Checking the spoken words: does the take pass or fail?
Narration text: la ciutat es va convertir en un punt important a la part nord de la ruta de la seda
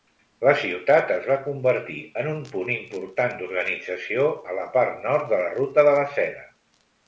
fail